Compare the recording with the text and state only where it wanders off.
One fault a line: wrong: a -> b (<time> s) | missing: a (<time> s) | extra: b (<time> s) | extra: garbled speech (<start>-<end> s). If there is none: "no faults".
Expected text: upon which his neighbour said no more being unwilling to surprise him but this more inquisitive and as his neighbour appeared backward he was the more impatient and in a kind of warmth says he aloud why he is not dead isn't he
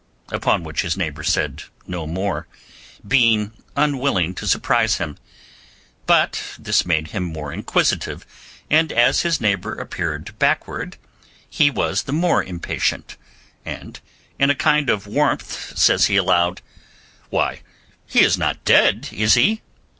extra: made him (6.9 s)
wrong: isn't -> is (19.1 s)